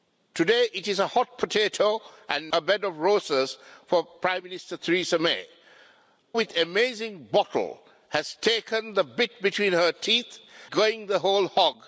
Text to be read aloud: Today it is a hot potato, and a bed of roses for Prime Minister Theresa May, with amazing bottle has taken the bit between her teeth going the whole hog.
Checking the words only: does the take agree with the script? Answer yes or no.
yes